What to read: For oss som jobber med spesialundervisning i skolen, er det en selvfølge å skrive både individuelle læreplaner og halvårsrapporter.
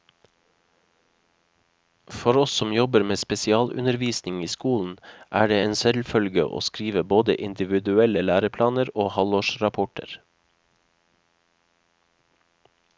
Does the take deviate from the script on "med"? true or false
false